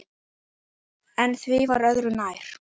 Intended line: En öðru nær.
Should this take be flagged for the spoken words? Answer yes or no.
yes